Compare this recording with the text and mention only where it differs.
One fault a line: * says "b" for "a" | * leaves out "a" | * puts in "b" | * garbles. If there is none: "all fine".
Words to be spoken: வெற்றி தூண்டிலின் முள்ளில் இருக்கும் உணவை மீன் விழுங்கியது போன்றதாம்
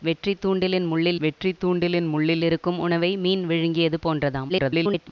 * puts in "வெற்றி தூண்டிலின் முள்ளில்"
* garbles